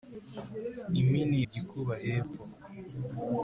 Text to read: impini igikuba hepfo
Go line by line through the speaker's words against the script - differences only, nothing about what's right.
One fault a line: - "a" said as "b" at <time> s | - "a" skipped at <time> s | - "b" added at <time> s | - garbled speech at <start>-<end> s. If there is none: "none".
none